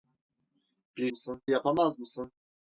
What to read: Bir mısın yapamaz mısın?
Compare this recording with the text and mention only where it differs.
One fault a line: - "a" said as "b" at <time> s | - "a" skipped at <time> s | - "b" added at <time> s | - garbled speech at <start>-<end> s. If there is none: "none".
none